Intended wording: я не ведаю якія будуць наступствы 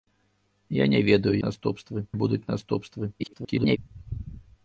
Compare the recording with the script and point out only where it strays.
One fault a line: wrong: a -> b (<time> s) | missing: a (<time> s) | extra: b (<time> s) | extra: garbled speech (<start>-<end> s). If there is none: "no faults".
wrong: якія -> наступствы (1.4 s)
extra: garbled speech (3.2-3.8 s)